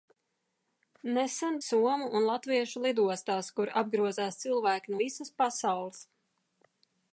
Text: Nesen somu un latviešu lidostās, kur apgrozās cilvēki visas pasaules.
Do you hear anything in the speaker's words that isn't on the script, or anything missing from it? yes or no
no